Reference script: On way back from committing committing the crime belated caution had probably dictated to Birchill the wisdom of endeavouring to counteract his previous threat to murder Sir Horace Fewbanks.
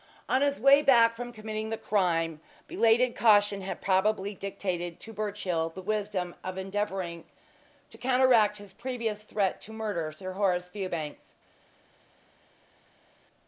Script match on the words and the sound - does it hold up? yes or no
no